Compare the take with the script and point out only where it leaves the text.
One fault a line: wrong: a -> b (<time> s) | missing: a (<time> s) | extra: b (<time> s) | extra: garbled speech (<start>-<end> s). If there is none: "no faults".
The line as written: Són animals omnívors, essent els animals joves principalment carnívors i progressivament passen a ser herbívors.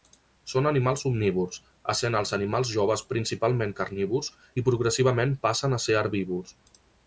no faults